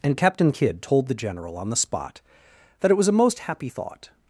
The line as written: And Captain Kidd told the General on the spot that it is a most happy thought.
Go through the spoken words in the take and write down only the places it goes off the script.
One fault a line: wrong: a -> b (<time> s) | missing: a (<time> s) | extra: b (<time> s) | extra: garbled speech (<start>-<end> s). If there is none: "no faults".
wrong: is -> was (2.9 s)